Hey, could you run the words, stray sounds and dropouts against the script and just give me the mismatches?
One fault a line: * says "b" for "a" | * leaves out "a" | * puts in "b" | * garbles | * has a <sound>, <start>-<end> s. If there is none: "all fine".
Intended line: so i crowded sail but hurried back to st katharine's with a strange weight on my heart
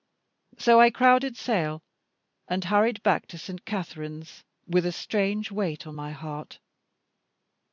* says "and" for "but"